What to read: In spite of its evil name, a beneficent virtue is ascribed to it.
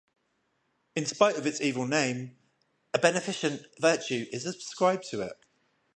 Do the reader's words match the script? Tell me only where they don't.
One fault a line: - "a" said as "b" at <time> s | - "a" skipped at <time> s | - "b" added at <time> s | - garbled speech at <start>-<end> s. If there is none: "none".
none